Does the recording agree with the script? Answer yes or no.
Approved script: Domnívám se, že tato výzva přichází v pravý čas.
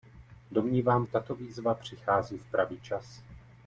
no